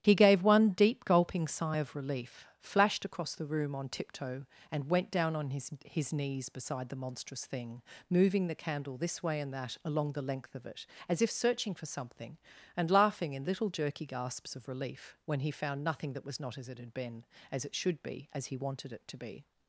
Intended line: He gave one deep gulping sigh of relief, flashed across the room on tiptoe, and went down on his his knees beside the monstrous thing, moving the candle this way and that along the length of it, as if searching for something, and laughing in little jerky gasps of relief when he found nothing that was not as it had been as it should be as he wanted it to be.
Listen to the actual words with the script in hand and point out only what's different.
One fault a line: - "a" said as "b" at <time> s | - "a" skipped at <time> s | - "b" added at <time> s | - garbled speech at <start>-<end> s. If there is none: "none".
none